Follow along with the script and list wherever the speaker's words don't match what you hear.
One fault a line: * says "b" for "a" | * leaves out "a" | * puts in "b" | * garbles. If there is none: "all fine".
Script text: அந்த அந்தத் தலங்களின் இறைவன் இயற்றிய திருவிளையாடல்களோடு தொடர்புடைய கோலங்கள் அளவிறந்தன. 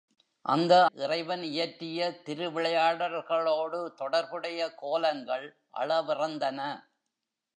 * leaves out "அந்தத் தலங்களின்"